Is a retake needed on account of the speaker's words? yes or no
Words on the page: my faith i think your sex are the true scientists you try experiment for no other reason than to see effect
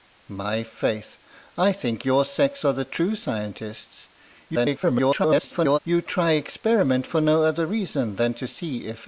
yes